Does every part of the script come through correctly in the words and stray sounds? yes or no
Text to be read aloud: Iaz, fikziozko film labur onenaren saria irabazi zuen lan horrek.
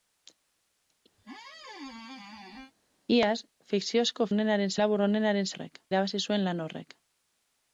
no